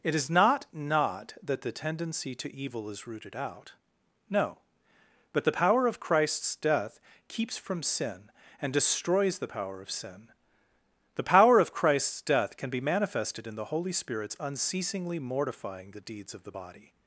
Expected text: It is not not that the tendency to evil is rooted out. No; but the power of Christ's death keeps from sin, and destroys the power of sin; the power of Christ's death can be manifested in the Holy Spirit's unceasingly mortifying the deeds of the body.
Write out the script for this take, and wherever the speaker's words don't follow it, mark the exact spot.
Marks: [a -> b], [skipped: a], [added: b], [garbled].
It is not not that the tendency to evil is rooted out. No; but the power of Christ's death keeps from sin, and destroys the power of sin; the power of Christ's death can be manifested in the Holy Spirit's unceasingly mortifying the deeds of the body.